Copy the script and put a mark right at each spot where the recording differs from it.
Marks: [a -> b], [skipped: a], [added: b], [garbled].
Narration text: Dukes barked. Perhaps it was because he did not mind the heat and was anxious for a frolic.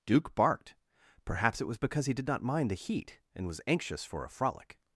[Dukes -> Duke] barked. Perhaps it was because he did not mind the heat and was anxious for a frolic.